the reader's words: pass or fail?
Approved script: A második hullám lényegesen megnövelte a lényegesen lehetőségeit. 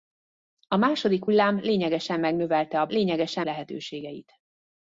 pass